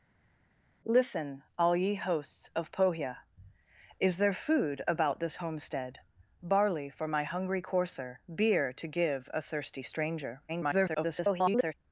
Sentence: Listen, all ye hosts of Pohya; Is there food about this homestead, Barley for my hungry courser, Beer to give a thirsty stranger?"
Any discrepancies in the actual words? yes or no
yes